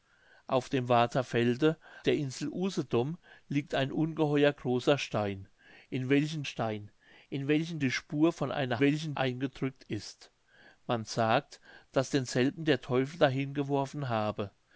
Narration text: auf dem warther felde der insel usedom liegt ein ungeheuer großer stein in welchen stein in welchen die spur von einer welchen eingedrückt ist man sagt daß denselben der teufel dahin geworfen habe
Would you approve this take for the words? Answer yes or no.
yes